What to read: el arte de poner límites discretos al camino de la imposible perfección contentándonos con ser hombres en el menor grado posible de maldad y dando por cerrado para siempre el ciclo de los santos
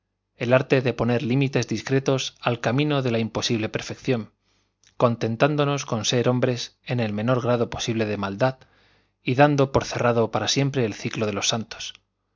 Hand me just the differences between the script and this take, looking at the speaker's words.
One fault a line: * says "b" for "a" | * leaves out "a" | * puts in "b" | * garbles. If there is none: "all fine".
all fine